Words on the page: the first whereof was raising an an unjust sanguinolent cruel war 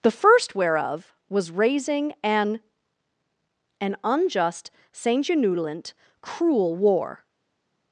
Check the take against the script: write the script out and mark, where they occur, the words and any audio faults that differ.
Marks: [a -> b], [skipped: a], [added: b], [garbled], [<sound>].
the first whereof was raising an an unjust sanguinolent cruel war